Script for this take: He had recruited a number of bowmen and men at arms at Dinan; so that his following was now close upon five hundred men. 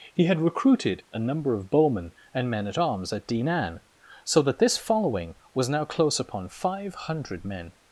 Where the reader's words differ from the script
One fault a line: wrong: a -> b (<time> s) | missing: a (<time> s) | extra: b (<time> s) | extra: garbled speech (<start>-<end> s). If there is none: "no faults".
wrong: his -> this (4.6 s)